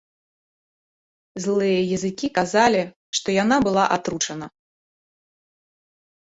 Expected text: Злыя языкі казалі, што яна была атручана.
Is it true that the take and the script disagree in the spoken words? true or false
false